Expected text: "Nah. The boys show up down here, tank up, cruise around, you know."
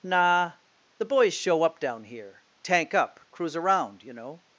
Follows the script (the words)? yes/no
yes